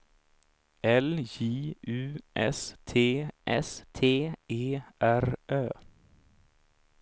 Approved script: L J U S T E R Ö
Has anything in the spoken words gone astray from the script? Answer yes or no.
yes